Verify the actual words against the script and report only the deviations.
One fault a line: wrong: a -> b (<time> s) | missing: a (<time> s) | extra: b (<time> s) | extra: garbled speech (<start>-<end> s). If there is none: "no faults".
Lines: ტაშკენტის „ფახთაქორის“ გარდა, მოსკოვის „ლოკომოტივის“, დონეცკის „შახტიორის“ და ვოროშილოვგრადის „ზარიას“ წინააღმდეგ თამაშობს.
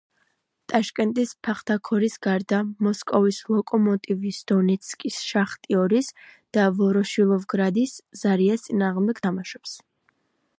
no faults